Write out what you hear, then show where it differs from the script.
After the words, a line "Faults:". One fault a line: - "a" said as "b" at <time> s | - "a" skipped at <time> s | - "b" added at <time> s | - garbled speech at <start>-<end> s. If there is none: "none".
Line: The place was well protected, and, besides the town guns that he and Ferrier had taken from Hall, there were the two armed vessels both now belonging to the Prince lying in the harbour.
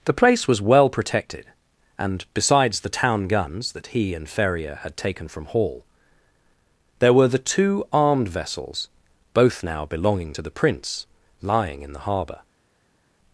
The place was well protected, and, besides the town guns that he and Ferrier had taken from Hall, there were the two armed vessels both now belonging to the Prince lying in the harbour.
Faults:
none